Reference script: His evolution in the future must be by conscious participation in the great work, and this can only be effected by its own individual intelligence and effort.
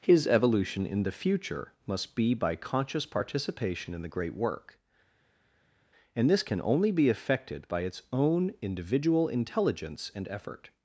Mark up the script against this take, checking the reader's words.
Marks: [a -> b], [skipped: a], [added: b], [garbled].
His evolution in the future must be by conscious participation in the great work, and this can only be effected by its own individual intelligence and effort.